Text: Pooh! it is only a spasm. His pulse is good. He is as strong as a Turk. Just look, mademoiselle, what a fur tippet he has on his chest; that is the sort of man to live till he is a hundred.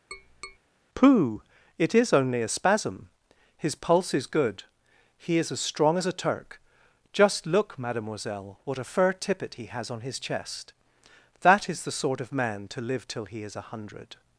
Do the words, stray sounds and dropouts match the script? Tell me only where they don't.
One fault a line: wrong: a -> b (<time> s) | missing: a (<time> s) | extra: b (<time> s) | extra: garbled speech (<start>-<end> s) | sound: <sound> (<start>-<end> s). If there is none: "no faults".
sound: tap (0.1-0.6 s)